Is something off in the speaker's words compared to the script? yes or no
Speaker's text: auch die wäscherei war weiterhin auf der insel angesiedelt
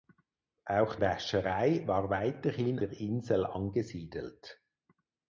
yes